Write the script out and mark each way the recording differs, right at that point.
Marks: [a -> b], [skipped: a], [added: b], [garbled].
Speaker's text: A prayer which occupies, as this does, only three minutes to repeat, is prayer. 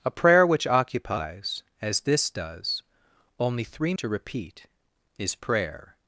A prayer which occupies, as this does, only three [skipped: minutes] to repeat, is prayer.